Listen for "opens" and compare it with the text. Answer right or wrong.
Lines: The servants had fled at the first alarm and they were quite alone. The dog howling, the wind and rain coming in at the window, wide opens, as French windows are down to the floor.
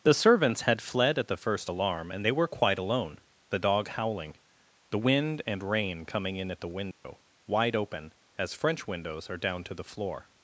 wrong